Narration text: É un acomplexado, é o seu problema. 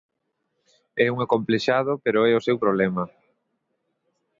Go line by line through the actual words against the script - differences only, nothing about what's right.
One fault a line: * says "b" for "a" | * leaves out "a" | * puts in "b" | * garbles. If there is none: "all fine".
* puts in "pero"